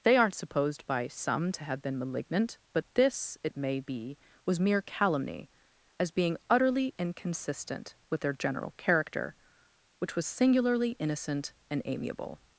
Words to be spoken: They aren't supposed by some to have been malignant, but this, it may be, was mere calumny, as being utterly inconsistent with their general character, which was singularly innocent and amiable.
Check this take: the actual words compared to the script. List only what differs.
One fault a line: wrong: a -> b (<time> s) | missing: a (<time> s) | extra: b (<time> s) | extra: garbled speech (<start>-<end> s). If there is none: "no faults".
no faults